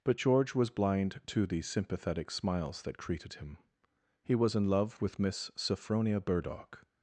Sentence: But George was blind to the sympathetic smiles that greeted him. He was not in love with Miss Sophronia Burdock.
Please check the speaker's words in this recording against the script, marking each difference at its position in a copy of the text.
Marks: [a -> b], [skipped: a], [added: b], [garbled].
But George was blind to the sympathetic smiles that greeted him. He was [skipped: not] in love with Miss Sophronia Burdock.